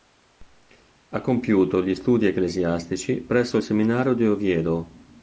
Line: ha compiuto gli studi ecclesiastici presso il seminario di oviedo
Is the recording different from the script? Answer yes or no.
no